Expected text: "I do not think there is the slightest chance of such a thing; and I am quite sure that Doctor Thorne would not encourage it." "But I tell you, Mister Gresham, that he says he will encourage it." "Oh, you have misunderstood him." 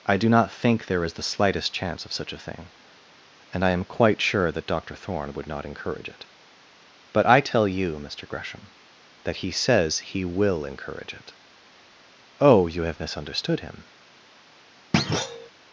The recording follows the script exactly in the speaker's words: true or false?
true